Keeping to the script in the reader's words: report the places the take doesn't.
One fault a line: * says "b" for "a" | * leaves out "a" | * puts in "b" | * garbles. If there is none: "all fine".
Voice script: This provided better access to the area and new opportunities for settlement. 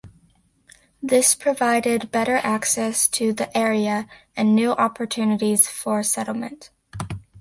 all fine